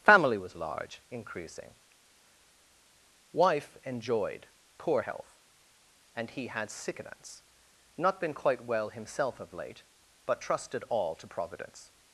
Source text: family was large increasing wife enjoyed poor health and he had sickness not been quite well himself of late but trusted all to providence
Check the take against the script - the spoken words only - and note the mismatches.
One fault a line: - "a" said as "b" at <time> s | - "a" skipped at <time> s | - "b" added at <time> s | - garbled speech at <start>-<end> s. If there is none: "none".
none